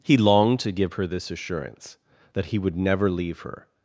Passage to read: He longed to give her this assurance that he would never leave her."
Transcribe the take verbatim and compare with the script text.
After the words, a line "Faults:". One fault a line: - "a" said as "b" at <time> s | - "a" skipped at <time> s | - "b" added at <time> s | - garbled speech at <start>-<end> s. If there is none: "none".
He longed to give her this assurance that he would never leave her."
Faults:
none